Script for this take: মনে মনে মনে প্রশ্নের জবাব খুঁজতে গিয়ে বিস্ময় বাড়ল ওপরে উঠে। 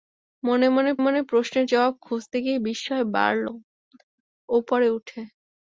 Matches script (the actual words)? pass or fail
pass